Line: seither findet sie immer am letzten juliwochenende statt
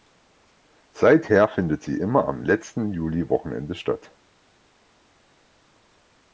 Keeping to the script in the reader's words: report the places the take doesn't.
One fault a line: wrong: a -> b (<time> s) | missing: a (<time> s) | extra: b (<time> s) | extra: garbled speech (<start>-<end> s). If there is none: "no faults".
no faults